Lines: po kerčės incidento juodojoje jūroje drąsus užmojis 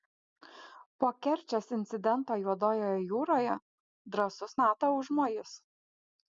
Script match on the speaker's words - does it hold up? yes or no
no